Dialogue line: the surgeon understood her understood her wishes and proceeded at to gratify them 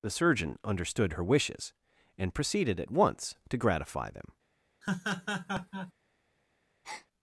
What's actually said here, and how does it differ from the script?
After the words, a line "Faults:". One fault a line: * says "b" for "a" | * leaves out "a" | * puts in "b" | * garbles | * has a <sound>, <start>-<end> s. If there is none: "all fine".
the surgeon understood her wishes and proceeded at once to gratify them
Faults:
* leaves out "understood her"
* puts in "once"
* has a laugh, 4.8-5.9 s
* has a breath, 6.8-7.1 s